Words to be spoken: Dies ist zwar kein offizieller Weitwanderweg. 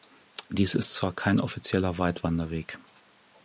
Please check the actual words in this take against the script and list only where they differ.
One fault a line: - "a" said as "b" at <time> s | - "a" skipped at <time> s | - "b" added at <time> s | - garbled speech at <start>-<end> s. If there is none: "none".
none